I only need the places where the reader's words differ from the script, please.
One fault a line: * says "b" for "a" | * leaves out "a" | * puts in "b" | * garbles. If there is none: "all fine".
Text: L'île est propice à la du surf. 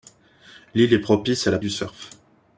all fine